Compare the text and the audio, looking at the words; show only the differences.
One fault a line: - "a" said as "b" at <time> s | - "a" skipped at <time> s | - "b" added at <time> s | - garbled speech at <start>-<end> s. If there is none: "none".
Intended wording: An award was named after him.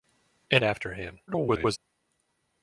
- "award was named" skipped at 0.6 s
- garbled speech at 1.3-1.8 s